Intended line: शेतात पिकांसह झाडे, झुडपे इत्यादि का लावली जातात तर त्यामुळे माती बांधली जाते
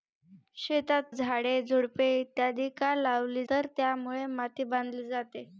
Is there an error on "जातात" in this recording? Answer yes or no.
yes